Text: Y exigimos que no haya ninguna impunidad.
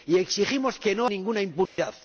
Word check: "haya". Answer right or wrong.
wrong